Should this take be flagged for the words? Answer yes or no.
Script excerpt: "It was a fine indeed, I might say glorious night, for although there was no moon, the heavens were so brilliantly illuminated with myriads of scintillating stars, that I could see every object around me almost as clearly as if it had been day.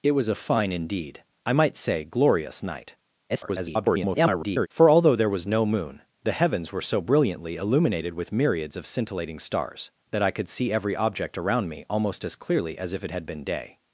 yes